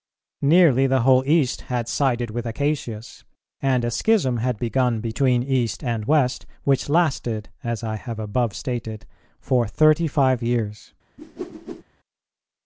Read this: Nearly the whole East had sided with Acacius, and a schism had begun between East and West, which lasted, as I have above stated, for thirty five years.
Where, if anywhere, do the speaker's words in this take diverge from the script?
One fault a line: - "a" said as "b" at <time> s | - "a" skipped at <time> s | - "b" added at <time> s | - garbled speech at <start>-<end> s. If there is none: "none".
none